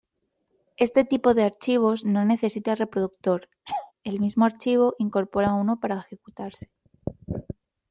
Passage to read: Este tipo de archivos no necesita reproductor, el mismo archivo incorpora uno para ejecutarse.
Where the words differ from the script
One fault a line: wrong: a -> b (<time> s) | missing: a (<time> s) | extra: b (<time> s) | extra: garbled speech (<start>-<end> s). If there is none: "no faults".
no faults